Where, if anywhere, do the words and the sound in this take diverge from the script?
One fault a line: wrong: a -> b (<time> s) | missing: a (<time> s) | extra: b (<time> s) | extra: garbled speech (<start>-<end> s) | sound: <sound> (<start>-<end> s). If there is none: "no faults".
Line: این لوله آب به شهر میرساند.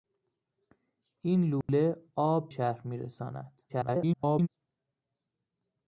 sound: dropout (1.6-1.7 s)
missing: به (2.5 s)
extra: garbled speech (3.7-4.5 s)